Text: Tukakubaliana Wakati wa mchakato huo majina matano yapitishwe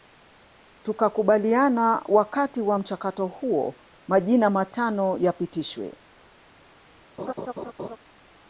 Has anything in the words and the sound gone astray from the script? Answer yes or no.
yes